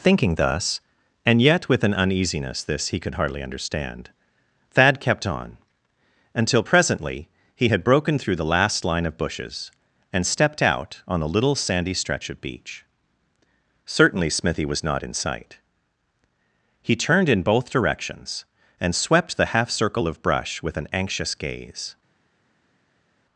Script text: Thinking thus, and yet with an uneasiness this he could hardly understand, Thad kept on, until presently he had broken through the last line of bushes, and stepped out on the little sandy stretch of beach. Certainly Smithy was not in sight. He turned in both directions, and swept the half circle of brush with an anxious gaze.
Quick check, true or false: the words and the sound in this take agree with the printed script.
true